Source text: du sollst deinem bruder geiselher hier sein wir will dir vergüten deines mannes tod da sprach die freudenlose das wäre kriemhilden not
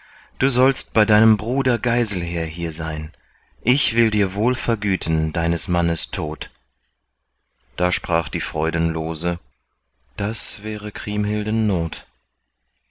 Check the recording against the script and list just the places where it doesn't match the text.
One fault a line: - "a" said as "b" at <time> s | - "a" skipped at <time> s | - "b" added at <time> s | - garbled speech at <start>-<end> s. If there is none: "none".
- "bei" added at 0.9 s
- "wir" said as "ich" at 3.6 s
- "wohl" added at 4.3 s